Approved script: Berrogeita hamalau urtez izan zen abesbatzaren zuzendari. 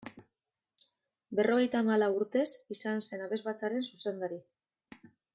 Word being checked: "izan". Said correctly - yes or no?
yes